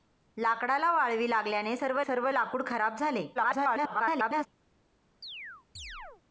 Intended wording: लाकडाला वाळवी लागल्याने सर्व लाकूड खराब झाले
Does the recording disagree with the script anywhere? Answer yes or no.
yes